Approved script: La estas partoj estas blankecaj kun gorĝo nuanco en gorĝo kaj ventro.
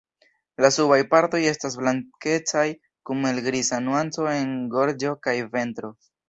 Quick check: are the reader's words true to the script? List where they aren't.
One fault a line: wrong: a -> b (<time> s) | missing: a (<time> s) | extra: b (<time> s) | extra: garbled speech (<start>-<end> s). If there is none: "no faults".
wrong: estas -> subaj (0.8 s)
wrong: gorĝo -> helgriza (3.3 s)